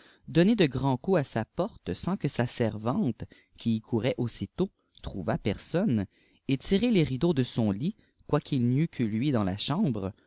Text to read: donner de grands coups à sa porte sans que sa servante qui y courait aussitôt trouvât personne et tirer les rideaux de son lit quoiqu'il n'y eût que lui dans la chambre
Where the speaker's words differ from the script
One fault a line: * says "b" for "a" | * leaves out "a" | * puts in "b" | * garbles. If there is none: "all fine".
all fine